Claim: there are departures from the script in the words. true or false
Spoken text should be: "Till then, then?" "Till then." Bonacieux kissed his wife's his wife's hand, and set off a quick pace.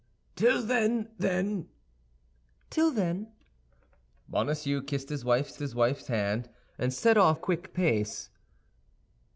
false